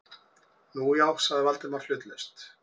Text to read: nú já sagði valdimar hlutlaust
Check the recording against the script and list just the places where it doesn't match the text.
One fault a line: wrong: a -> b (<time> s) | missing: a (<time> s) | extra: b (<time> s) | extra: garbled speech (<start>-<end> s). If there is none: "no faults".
no faults